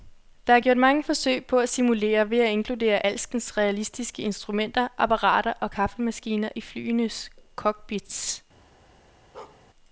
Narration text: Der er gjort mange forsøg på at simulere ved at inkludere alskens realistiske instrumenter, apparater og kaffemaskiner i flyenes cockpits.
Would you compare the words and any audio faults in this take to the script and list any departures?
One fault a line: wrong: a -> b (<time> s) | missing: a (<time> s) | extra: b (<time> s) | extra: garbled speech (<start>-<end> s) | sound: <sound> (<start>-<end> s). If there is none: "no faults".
sound: bark (9.3-9.6 s)